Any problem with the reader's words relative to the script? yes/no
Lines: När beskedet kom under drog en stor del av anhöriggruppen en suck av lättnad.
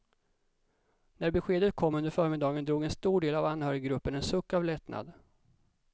yes